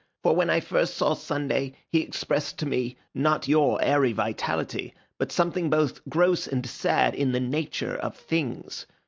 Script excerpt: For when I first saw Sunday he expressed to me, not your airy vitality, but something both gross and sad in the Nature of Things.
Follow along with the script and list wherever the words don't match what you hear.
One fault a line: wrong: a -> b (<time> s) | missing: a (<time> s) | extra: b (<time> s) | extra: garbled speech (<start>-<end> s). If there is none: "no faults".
no faults